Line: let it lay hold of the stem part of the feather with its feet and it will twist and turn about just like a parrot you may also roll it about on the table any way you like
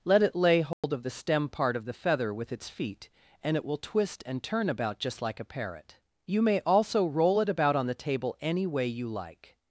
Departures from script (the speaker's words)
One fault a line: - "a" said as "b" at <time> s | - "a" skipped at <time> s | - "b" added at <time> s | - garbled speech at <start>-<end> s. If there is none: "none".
none